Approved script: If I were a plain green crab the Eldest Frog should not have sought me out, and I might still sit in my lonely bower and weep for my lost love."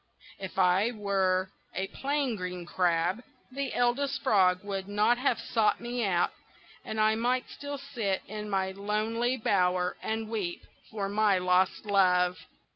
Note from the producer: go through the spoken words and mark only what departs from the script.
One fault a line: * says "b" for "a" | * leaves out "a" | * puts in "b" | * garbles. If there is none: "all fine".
* says "would" for "should"